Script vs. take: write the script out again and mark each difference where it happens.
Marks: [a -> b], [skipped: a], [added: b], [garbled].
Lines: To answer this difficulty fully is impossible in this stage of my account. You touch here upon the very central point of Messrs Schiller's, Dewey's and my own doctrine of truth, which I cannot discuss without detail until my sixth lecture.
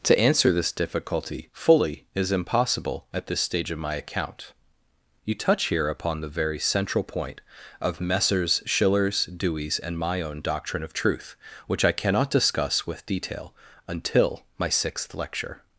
To answer this difficulty fully is impossible [in -> at] this stage of my account. You touch here upon the very central point of Messrs Schiller's, Dewey's and my own doctrine of truth, which I cannot discuss [without -> with] detail until my sixth lecture.